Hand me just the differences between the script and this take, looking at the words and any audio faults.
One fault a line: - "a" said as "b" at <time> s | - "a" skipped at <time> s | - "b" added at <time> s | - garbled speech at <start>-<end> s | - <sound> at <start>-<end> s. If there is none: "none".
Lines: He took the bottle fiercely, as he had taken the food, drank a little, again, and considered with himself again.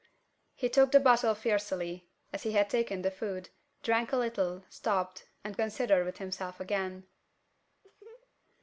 - "again" said as "stopped" at 4.7 s
- laugh at 7.8-8.3 s